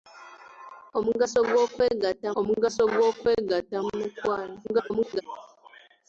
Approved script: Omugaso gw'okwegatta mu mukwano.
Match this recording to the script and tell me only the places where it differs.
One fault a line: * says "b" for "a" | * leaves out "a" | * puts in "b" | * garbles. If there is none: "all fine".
* puts in "omugaso gw'okwegatta"
* garbles